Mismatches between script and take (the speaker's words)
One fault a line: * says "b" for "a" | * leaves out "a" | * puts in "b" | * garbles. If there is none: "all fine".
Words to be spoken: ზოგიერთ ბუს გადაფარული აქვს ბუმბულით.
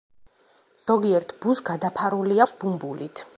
all fine